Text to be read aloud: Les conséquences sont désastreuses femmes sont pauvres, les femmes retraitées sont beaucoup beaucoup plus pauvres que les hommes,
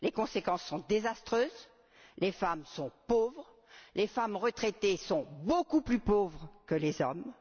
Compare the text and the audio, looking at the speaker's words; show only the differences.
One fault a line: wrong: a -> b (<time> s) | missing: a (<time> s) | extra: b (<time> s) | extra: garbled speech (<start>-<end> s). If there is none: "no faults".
extra: les (2.2 s)
missing: beaucoup (5.8 s)